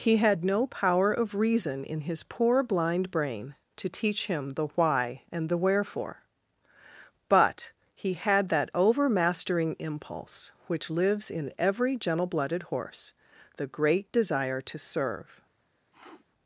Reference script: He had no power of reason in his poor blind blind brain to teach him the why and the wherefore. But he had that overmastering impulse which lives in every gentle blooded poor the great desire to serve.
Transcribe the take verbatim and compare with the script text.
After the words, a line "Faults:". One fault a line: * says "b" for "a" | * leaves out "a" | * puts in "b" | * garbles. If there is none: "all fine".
He had no power of reason in his poor blind brain to teach him the why and the wherefore. But he had that overmastering impulse which lives in every gentle blooded horse the great desire to serve.
Faults:
* leaves out "blind"
* says "horse" for "poor"